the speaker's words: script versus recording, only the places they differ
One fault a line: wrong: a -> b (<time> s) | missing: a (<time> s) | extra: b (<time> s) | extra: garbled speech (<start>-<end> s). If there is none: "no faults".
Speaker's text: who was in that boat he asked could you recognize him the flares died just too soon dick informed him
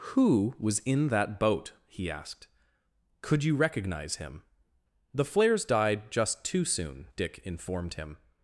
no faults